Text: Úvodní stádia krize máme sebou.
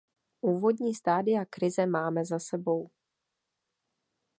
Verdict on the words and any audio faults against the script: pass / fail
fail